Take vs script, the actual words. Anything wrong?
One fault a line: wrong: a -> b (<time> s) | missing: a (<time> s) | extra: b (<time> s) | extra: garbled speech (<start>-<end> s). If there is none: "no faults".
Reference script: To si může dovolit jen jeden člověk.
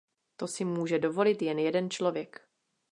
no faults